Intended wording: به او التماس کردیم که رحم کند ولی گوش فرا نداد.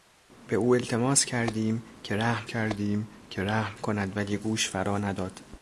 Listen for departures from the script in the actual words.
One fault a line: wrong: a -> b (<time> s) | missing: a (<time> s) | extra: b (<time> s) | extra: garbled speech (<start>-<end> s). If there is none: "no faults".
extra: کردیم که رحم (2.5 s)